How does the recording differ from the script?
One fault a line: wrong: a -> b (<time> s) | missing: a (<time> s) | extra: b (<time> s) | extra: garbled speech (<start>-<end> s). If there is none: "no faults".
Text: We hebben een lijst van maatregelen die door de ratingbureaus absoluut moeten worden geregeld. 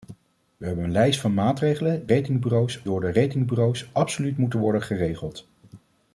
wrong: die -> ratingbureaus (2.1 s)